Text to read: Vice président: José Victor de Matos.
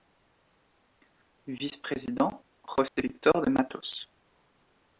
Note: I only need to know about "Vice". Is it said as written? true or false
true